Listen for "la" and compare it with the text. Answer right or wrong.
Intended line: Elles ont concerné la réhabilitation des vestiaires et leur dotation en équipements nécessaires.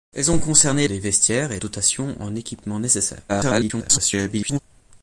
wrong